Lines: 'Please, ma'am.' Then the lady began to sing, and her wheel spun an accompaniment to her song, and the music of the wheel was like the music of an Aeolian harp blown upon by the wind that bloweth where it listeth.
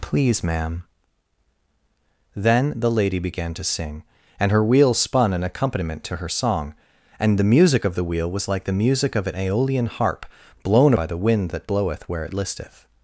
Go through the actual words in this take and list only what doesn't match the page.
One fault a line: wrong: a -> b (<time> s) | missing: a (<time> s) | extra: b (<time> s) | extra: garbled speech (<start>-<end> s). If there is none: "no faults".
missing: upon (10.9 s)